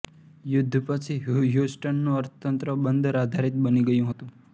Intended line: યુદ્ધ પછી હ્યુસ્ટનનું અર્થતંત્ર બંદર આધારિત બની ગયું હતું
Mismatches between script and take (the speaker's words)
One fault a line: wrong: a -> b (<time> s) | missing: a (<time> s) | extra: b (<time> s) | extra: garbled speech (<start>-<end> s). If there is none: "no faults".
no faults